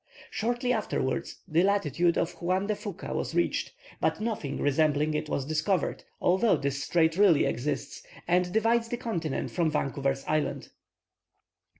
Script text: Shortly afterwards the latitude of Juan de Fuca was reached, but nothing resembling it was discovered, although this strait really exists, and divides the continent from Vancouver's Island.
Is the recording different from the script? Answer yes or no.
no